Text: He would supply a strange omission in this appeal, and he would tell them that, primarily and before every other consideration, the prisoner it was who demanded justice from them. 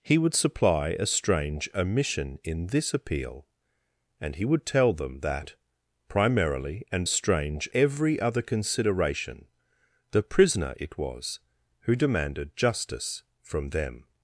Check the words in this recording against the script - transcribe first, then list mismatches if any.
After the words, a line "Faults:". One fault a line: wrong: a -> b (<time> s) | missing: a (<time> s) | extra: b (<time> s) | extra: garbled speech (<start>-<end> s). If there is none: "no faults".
He would supply a strange omission in this appeal, and he would tell them that, primarily and strange every other consideration, the prisoner it was who demanded justice from them.
Faults:
wrong: before -> strange (7.0 s)